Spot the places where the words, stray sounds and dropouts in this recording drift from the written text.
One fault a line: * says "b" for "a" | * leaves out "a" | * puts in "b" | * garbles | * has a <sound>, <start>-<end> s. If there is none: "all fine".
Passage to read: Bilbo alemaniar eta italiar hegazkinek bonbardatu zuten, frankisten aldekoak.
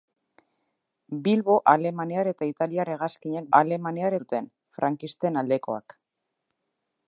* says "alemaniar" for "bonbardatu"